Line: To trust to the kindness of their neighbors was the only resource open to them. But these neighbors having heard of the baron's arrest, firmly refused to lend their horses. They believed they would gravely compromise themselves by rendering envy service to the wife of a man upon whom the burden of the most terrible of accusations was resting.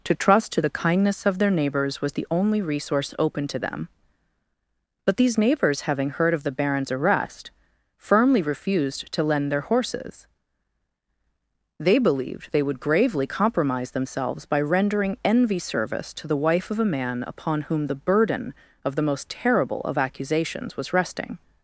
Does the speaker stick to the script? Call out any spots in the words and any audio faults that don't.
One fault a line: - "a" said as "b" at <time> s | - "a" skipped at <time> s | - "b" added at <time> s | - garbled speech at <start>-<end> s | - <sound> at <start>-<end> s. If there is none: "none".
none